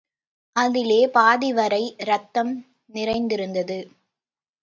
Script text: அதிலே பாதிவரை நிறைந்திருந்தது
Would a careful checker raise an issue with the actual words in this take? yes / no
yes